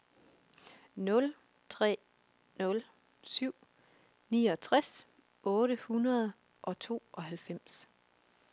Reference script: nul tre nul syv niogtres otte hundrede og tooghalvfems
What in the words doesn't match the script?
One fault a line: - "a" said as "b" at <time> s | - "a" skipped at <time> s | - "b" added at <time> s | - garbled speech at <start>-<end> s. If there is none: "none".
none